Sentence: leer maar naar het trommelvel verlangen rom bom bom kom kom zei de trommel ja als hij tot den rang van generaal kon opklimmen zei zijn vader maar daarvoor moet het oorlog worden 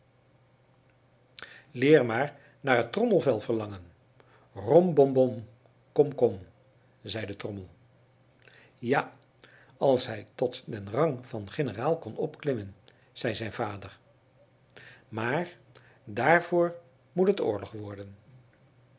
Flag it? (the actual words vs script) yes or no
no